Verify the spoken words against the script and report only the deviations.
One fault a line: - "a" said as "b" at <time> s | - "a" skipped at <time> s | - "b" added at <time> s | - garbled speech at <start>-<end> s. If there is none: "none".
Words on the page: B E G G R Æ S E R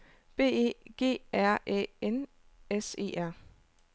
- "G" skipped at 1.2 s
- "N" added at 2.0 s